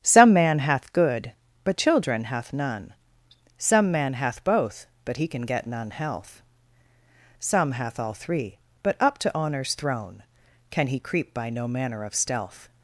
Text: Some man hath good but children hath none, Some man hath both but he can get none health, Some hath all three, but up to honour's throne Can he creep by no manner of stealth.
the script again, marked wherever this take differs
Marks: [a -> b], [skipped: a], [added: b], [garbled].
Some man hath good but children hath none, Some man hath both but he can get none health, Some hath all three, but up to honour's throne Can he creep by no manner of stealth.